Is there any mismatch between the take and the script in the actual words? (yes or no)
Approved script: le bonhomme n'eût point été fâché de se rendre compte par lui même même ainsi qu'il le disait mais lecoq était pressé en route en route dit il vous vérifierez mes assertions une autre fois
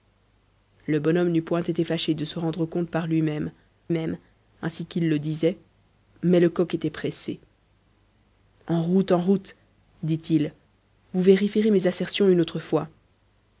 no